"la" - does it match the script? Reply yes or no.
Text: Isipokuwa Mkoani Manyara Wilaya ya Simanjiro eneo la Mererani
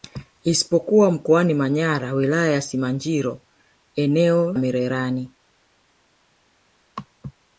no